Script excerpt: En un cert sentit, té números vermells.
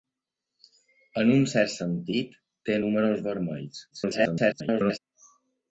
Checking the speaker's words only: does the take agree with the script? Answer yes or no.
no